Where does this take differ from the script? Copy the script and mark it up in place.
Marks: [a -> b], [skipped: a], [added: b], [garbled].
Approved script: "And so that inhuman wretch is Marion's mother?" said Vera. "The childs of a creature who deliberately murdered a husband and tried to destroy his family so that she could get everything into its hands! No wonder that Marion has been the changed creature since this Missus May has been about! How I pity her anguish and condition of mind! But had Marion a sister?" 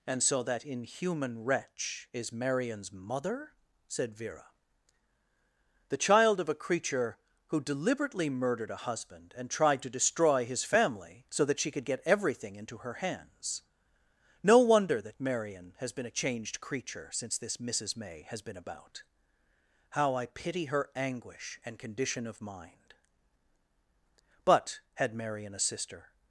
"And so that inhuman wretch is Marion's mother?" said Vera. "The [childs -> child] of a creature who deliberately murdered a husband and tried to destroy his family so that she could get everything into [its -> her] hands! No wonder that Marion has been [the -> a] changed creature since this Missus May has been about! How I pity her anguish and condition of mind! But had Marion a sister?"